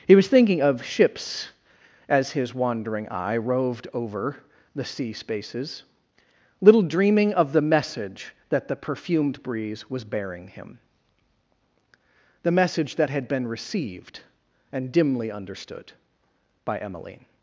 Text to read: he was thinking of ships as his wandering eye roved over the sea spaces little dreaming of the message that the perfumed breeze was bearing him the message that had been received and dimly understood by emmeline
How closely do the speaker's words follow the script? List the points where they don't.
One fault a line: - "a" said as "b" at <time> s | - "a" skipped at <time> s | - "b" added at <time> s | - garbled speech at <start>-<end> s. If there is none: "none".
none